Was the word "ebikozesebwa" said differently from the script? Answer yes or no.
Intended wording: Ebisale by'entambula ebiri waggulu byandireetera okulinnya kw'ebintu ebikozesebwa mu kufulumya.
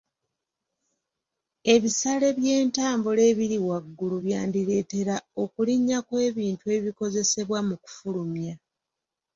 no